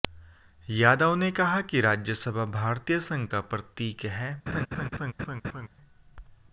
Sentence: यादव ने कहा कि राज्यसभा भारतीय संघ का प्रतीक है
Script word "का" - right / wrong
right